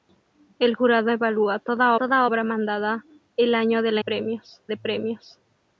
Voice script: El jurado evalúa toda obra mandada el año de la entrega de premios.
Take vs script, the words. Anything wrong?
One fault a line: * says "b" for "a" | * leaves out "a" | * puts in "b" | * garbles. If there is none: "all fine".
* puts in "toda"
* says "premios" for "entrega"